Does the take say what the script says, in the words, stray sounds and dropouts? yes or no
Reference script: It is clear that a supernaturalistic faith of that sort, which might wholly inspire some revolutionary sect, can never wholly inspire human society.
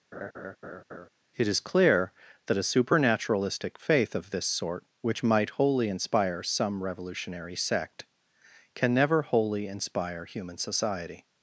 no